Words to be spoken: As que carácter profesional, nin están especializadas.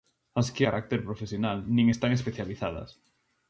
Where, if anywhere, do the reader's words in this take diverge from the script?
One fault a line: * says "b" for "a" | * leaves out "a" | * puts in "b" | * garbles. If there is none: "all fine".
all fine